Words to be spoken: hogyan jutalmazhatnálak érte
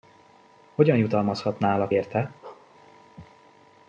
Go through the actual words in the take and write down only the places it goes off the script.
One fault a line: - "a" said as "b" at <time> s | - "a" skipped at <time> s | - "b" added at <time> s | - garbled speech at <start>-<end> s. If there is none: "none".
none